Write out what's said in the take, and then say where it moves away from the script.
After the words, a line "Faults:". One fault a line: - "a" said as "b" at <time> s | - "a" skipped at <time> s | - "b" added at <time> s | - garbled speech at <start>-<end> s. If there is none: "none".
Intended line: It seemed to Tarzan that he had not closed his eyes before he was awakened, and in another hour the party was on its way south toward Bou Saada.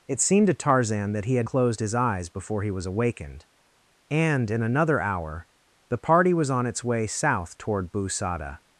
It seemed to Tarzan that he had closed his eyes before he was awakened, and in another hour the party was on its way south toward Bou Saada.
Faults:
- "not" skipped at 1.5 s